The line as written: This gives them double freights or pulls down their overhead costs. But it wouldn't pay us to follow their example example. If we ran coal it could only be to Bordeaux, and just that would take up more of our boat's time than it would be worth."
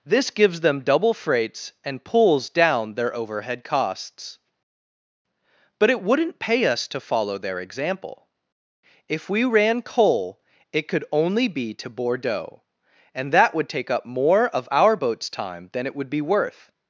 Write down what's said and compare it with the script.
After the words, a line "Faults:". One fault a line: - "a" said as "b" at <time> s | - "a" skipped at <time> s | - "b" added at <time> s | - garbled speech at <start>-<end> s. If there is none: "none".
This gives them double freights and pulls down their overhead costs. But it wouldn't pay us to follow their example. If we ran coal it could only be to Bordeaux, and that would take up more of our boat's time than it would be worth."
Faults:
- "or" said as "and" at 1.9 s
- "example" skipped at 8.3 s
- "just" skipped at 13.3 s